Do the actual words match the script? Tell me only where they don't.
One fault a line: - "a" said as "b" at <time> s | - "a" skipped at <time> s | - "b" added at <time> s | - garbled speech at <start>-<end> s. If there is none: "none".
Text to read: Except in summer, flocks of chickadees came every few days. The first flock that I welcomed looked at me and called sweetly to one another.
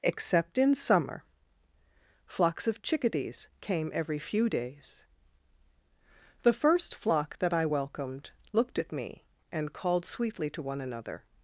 none